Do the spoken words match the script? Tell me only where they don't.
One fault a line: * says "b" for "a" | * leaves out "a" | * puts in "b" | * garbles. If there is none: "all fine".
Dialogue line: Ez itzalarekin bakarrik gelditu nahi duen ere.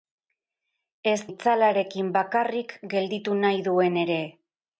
all fine